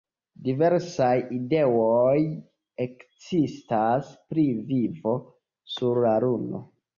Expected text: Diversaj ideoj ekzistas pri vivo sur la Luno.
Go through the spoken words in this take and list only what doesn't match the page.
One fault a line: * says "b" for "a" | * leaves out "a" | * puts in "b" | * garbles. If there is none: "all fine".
all fine